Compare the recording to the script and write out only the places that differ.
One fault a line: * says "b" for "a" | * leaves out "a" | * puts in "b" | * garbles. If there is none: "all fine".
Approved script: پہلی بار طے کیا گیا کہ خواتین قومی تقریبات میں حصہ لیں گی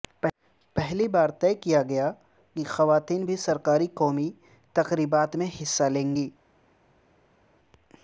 * puts in "بھی سرکاری"